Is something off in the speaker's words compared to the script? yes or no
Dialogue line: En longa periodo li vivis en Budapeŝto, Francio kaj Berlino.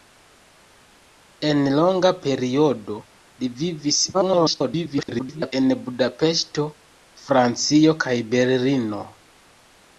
yes